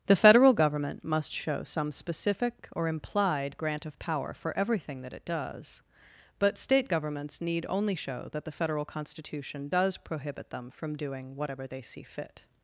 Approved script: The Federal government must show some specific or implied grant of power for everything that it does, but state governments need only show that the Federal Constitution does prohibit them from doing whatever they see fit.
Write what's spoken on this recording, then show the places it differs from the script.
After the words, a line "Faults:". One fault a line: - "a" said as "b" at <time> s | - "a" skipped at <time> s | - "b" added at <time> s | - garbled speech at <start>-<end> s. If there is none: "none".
The Federal government must show some specific or implied grant of power for everything that it does, but state governments need only show that the Federal Constitution does prohibit them from doing whatever they see fit.
Faults:
none